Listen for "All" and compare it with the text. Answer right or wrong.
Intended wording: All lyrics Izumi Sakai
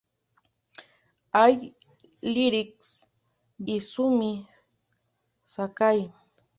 right